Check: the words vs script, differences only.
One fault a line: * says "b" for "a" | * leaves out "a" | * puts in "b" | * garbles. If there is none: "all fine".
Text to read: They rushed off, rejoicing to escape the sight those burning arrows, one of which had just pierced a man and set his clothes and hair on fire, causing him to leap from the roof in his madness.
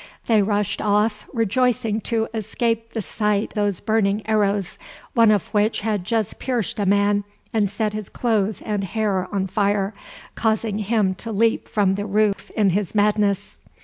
all fine